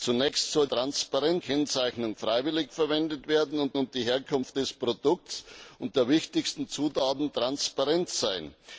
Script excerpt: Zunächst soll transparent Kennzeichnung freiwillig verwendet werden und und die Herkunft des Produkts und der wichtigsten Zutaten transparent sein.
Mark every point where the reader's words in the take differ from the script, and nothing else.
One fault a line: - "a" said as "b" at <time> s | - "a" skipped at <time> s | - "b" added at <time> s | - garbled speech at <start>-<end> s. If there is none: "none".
none